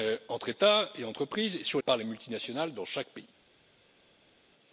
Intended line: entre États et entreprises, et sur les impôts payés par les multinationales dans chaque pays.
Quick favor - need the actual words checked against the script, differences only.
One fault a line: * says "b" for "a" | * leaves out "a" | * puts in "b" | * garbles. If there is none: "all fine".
* leaves out "les impôts payés"